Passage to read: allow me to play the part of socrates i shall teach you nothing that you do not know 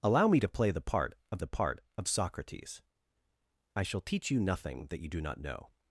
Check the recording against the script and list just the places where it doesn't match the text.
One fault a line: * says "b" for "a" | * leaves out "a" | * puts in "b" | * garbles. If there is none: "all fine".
* puts in "the part of"